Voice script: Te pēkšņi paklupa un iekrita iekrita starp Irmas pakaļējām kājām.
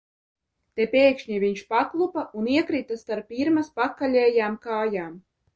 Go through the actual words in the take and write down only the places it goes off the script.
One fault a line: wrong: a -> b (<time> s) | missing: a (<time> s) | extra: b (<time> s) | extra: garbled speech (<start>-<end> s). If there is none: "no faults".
extra: viņš (1.4 s)
missing: iekrita (3.0 s)